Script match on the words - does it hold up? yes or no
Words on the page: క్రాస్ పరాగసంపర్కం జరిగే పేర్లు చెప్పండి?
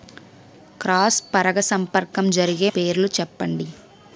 yes